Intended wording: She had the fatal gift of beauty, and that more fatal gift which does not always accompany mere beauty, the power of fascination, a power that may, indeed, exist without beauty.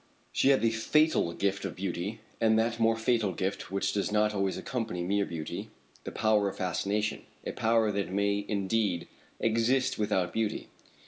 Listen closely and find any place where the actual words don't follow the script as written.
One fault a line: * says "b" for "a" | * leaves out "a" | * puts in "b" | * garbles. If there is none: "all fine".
all fine